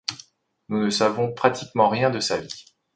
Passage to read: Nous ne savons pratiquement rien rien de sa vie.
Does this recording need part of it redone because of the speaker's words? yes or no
yes